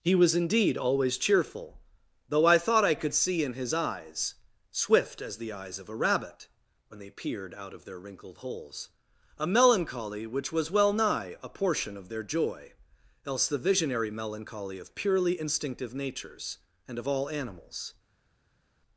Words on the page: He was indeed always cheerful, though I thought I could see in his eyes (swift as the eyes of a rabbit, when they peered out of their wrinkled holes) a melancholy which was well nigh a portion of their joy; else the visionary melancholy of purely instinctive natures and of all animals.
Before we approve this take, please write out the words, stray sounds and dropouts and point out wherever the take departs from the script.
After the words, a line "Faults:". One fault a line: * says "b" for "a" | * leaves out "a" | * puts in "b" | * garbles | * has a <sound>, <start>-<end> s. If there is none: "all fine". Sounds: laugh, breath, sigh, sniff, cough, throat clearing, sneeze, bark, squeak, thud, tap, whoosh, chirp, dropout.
He was indeed always cheerful, though I thought I could see in his eyes (swift as the eyes of a rabbit, when they peered out of their wrinkled holes) a melancholy which was well nigh a portion of their joy; else the visionary melancholy of purely instinctive natures and of all animals.
Faults:
all fine